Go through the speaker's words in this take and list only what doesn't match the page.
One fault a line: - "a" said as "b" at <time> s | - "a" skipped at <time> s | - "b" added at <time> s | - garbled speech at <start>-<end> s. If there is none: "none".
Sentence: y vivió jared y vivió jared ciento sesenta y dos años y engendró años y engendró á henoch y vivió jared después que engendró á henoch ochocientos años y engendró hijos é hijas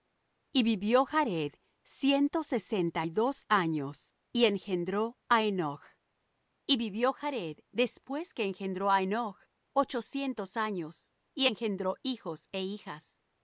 - "y vivió jared" skipped at 1.5 s
- "años y engendró" skipped at 5.2 s